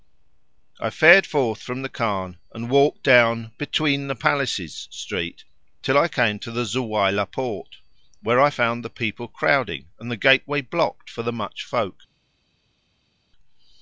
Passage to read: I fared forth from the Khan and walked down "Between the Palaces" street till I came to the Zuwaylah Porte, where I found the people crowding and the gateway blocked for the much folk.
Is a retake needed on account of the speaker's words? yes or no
no